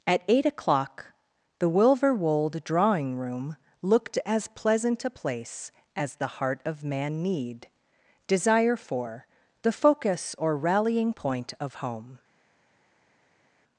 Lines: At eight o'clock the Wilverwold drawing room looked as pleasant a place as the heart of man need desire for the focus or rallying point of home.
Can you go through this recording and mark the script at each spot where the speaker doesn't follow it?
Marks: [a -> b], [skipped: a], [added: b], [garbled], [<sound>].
At eight o'clock the Wilverwold drawing room looked as pleasant a place as the heart of man need desire for the focus or rallying point of home.